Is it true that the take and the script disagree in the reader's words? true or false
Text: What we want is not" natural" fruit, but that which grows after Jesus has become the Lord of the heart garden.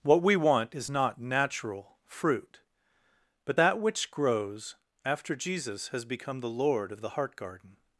false